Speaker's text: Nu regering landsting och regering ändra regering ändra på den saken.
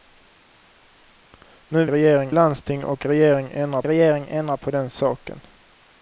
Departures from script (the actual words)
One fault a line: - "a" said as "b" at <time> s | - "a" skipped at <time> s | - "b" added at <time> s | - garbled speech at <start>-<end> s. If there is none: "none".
none